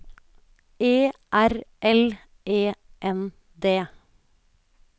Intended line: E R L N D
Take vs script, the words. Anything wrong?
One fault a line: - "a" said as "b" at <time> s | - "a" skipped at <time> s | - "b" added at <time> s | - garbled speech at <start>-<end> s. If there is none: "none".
- "E" added at 2.4 s